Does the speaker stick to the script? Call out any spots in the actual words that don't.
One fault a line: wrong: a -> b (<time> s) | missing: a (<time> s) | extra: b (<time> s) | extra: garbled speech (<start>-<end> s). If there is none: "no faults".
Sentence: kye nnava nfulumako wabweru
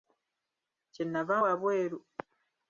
missing: nfulumako (1.4 s)